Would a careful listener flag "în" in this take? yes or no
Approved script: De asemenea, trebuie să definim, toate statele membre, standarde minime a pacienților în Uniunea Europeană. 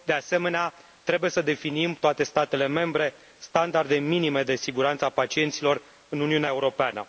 no